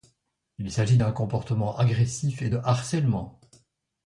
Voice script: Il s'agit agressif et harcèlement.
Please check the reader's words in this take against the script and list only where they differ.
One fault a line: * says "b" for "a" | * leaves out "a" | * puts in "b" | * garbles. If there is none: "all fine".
* puts in "d'un comportement"
* puts in "de"